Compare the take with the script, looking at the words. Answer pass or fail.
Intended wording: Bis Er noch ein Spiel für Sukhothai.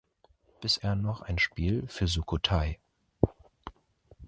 pass